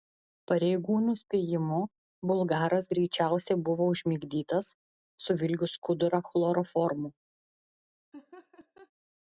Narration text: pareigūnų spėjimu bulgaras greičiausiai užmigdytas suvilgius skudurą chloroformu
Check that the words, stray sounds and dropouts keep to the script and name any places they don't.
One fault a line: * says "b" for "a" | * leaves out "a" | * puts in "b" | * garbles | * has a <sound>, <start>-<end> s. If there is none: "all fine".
* puts in "buvo"
* has a laugh, 8.1-8.9 s